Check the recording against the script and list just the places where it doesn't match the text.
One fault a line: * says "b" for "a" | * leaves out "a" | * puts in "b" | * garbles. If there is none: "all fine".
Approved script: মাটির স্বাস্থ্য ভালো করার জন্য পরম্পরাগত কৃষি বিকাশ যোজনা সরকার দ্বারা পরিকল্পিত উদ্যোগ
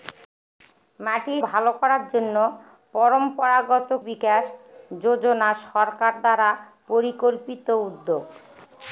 * leaves out "স্বাস্থ্য"
* leaves out "কৃষি"